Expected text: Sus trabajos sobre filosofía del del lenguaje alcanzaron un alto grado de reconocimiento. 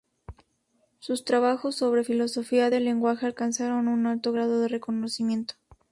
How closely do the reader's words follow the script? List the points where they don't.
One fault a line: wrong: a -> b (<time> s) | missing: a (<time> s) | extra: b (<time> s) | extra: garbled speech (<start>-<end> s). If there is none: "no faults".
missing: del (2.8 s)